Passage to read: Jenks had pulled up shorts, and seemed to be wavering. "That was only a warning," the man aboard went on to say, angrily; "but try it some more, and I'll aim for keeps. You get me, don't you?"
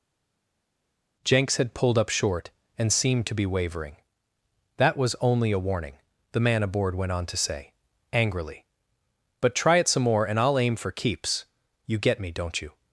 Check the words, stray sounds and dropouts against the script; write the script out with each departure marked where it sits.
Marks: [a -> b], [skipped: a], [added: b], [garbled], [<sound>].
Jenks had pulled up [shorts, -> short] and seemed to be wavering. "That was only a warning," the man aboard went on to say, angrily; "but try it some more, and I'll aim for keeps. You get me, don't you?"